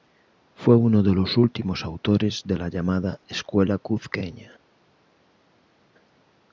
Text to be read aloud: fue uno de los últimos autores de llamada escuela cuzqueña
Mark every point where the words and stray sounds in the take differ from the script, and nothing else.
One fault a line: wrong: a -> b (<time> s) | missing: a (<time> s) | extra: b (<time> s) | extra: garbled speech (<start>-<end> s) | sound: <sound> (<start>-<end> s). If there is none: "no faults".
extra: la (2.6 s)